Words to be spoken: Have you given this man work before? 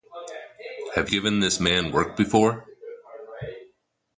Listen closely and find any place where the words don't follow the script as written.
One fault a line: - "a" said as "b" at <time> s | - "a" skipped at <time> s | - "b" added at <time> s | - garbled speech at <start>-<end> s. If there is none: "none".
- "you" skipped at 1.1 s